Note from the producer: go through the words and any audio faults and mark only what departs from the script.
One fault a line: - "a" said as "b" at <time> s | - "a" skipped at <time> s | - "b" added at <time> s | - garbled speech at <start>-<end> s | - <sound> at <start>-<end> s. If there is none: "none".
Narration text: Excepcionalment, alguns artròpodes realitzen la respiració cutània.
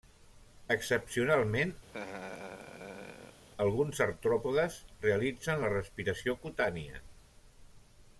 - laugh at 1.9-3.4 s